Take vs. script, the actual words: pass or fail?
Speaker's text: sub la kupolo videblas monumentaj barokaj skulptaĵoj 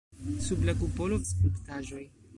fail